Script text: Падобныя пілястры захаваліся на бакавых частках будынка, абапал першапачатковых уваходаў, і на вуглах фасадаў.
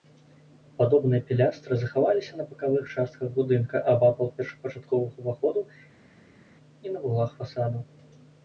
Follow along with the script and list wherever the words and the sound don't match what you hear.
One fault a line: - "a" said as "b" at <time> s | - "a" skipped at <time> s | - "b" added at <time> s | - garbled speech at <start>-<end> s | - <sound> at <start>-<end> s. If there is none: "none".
none